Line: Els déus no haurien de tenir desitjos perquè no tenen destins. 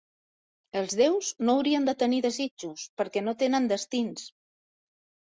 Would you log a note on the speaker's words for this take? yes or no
no